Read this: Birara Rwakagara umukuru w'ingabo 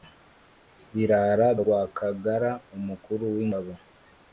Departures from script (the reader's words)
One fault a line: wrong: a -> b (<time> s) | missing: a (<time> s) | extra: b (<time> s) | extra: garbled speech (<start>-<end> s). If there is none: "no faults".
no faults